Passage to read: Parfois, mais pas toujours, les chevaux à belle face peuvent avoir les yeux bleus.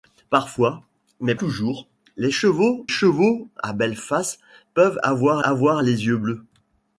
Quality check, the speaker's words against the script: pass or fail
fail